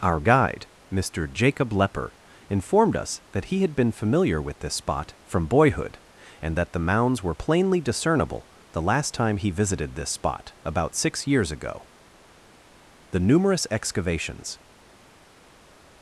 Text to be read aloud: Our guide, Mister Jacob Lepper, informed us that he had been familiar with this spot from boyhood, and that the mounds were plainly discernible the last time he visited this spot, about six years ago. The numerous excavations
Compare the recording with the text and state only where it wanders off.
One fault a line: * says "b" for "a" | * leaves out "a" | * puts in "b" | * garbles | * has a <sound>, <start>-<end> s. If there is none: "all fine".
all fine